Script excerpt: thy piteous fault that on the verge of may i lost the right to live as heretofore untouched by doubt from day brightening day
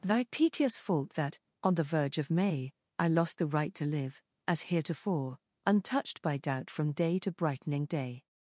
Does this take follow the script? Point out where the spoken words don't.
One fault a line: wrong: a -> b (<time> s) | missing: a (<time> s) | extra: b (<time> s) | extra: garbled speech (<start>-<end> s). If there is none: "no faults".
extra: to (7.2 s)